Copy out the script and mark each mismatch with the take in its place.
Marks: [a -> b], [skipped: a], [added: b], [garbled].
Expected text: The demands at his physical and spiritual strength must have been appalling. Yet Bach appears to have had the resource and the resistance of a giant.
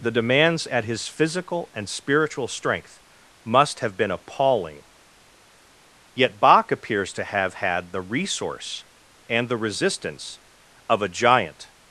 The demands at his physical and spiritual strength must have been appalling. Yet Bach appears to have had the resource and the resistance of a giant.